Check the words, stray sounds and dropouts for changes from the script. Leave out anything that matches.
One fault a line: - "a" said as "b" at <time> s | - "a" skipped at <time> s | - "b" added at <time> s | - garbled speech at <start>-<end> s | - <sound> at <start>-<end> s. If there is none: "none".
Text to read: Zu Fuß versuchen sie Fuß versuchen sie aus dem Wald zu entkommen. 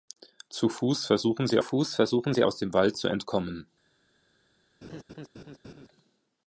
- laugh at 4.8-5.9 s